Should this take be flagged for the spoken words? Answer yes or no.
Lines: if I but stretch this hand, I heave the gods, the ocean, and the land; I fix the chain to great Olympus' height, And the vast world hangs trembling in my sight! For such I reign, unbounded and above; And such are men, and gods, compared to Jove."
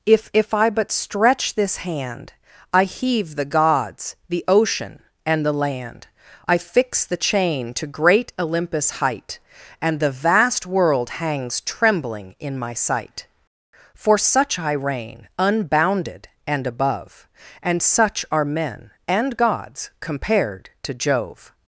yes